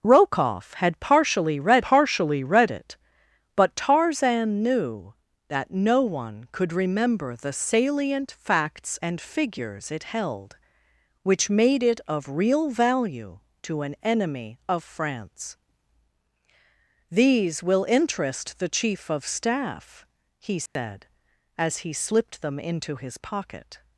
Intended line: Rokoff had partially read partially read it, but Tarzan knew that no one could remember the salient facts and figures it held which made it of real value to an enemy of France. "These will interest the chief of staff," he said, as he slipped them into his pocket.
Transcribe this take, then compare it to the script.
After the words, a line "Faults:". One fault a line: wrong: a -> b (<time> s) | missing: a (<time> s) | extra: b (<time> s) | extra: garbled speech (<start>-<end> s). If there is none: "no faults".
Rokoff had partially read partially read it, but Tarzan knew that no one could remember the salient facts and figures it held which made it of real value to an enemy of France. "These will interest the chief of staff," he said, as he slipped them into his pocket.
Faults:
no faults